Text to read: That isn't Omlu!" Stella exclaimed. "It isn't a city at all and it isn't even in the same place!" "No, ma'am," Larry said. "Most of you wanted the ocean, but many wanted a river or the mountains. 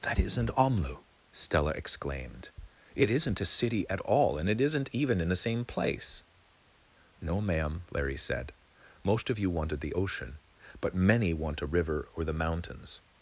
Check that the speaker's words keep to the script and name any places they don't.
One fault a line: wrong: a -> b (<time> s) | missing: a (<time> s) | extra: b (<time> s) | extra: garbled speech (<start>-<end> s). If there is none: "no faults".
wrong: wanted -> want (11.3 s)